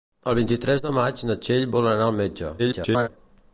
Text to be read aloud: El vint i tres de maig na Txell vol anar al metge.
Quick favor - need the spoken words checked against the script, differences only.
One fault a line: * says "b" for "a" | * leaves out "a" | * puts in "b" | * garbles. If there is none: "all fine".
* garbles